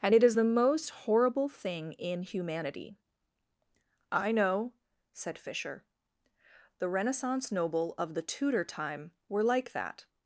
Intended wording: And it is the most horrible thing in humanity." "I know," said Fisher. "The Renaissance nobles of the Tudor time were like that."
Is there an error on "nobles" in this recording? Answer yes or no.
yes